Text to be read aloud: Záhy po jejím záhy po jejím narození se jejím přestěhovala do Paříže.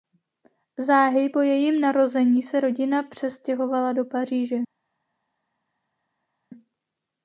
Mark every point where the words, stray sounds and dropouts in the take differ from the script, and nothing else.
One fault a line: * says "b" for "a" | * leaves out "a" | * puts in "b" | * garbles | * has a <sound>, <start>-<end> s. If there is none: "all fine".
* leaves out "záhy po jejím"
* says "rodina" for "jejím"